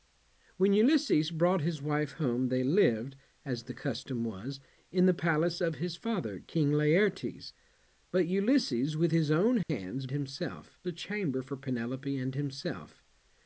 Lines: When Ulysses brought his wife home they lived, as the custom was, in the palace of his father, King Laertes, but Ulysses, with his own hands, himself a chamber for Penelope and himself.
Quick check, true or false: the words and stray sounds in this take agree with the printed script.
false